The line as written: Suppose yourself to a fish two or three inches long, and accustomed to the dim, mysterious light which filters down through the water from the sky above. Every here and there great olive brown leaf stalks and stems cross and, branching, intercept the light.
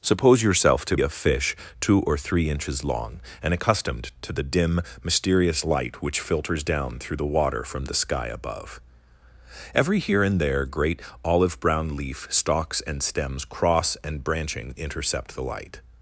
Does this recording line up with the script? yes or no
yes